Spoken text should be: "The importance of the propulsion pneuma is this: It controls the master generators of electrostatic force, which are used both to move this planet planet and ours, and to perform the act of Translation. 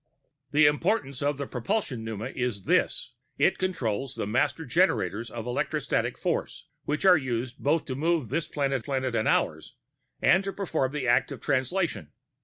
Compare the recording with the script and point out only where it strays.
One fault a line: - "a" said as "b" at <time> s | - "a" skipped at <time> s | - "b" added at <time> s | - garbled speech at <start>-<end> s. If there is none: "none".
none